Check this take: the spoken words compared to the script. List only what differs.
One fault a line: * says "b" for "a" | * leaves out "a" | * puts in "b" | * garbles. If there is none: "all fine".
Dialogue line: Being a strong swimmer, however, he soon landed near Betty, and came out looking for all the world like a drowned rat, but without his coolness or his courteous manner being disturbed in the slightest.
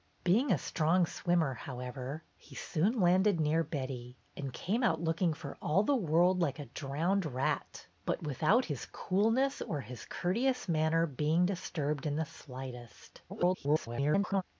* garbles